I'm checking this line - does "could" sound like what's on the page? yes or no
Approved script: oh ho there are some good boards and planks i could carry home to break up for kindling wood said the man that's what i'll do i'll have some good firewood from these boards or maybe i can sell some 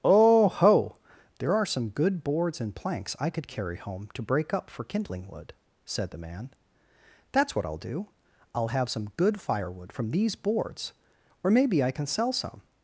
yes